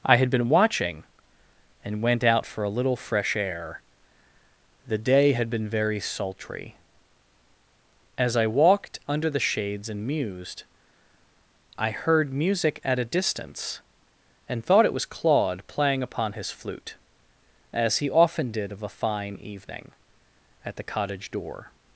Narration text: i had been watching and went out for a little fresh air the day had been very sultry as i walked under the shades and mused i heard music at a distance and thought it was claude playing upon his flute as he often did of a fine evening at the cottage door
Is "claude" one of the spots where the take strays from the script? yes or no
no